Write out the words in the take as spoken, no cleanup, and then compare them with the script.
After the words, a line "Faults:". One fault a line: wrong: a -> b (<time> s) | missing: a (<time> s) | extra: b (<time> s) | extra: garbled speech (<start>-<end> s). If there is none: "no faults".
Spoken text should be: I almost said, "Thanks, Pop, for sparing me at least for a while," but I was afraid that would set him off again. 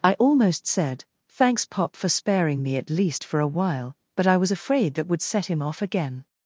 I almost said, "Thanks, Pop, for sparing me at least for a while," but I was afraid that would set him off again.
Faults:
no faults